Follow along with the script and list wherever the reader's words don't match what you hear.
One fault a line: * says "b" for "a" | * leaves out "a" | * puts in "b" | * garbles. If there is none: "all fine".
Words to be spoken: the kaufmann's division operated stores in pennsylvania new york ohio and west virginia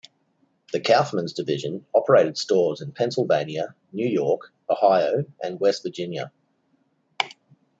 all fine